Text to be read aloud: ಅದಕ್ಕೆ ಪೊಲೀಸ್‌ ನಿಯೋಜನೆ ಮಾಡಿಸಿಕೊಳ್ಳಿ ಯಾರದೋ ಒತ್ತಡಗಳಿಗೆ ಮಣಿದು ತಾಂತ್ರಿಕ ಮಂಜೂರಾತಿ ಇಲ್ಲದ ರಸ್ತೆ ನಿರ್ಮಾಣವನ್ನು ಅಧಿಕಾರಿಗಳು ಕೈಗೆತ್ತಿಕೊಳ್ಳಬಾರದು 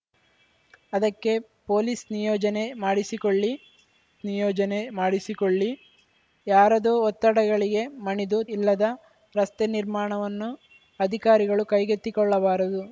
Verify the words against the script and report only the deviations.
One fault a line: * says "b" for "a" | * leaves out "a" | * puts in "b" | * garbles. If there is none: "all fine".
* puts in "ನಿಯೋಜನೆ ಮಾಡಿಸಿಕೊಳ್ಳಿ"
* leaves out "ತಾಂತ್ರಿಕ ಮಂಜೂರಾತಿ"